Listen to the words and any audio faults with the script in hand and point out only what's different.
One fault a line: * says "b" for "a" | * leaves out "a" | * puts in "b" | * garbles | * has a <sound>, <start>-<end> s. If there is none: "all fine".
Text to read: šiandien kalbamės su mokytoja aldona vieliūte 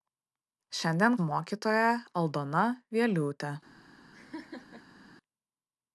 * leaves out "kalbamės"
* has a laugh, 4.1-5.0 s